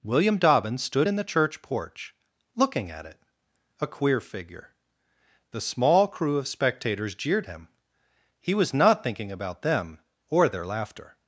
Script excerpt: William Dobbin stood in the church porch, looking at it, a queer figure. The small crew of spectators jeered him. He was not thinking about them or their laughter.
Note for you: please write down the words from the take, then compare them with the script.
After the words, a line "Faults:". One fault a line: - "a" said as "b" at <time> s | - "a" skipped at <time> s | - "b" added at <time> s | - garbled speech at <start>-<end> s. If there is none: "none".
William Dobbin stood in the church porch, looking at it, a queer figure. The small crew of spectators jeered him. He was not thinking about them or their laughter.
Faults:
none